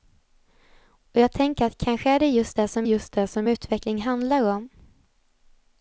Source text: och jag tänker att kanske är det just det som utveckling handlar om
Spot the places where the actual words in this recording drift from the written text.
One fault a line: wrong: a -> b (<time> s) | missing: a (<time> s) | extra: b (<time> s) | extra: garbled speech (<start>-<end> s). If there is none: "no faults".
extra: just det som (2.8 s)